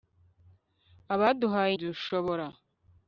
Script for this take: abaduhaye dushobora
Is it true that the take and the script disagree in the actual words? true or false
false